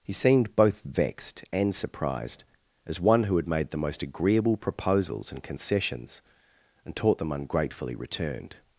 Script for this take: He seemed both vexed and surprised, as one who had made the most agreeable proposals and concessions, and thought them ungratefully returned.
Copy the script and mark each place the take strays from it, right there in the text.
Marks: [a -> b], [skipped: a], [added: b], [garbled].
He seemed both vexed and surprised, as one who had made the most agreeable proposals and concessions, and [thought -> taught] them ungratefully returned.